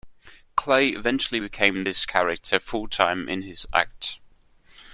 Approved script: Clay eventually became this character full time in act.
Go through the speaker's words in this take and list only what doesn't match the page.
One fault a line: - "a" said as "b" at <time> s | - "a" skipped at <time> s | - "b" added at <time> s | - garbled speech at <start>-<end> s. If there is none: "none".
- "his" added at 3.4 s